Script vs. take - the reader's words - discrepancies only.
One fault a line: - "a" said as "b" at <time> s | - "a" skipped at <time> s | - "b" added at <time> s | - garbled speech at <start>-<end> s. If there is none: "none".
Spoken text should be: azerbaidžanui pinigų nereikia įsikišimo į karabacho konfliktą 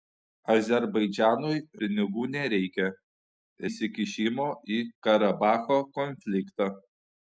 none